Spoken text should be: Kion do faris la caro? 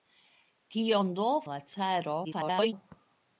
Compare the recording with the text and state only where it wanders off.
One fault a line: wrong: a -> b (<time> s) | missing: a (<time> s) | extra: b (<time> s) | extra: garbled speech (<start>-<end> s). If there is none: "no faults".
missing: faris (1.3 s)
extra: garbled speech (2.2-2.7 s)